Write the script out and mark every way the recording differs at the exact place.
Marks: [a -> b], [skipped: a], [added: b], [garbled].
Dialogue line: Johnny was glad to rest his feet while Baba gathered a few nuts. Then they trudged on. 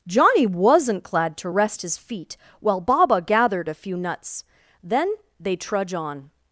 Johnny [was -> wasn't] glad to rest his feet while Baba gathered a few nuts. Then they [trudged -> trudge] on.